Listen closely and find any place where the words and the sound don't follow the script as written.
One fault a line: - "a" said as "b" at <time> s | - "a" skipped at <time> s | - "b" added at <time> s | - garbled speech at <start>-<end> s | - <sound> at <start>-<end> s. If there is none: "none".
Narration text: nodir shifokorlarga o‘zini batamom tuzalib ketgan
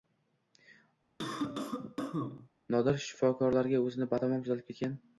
- cough at 1.2-2.5 s